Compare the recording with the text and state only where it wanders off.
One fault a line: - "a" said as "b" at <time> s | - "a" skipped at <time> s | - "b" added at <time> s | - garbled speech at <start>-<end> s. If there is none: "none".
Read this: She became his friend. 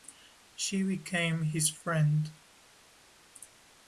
none